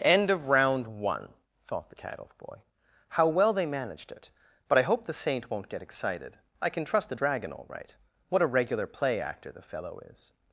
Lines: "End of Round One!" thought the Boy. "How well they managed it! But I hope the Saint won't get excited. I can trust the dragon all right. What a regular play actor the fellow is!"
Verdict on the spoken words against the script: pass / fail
fail